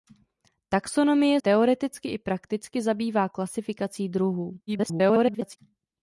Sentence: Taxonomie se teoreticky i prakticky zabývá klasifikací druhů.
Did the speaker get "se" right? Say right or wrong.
wrong